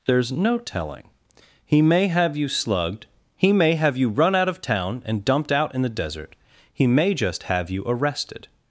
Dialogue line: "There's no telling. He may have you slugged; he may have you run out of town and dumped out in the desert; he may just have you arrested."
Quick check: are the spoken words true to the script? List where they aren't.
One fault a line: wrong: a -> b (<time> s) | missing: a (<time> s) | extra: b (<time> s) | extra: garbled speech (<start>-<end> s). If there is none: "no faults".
no faults